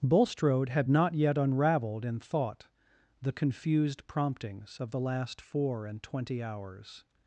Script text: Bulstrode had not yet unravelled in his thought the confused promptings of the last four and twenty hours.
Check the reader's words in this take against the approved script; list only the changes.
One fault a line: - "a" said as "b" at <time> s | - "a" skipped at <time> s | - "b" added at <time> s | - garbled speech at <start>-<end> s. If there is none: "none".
- "his" skipped at 2.2 s